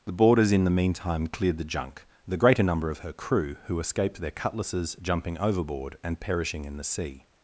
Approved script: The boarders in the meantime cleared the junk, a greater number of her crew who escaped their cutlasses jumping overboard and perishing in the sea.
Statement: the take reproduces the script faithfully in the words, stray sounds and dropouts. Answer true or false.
false